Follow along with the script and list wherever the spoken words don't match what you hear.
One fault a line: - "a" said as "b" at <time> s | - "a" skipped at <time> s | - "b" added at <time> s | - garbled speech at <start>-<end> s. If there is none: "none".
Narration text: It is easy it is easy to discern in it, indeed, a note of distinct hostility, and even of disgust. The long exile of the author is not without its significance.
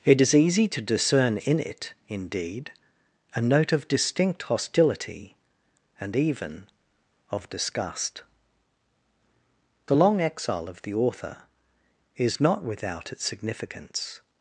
- "it is easy" skipped at 0.7 s